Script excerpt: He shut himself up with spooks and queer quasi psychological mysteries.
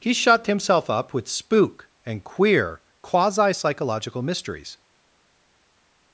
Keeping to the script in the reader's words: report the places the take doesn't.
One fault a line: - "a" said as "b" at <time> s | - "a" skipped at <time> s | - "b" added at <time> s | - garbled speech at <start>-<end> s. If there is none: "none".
- "spooks" said as "spook" at 1.3 s